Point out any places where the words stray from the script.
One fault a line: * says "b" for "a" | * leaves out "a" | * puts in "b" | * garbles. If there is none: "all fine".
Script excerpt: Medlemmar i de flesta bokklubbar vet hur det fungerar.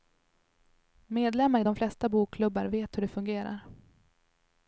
all fine